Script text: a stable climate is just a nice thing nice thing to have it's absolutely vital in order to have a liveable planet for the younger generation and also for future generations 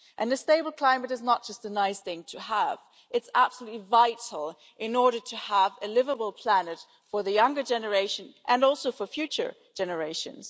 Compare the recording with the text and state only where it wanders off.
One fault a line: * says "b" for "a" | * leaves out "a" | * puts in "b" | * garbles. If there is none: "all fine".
* puts in "not"
* leaves out "nice thing"